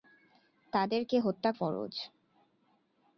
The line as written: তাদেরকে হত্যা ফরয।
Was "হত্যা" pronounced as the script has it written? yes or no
yes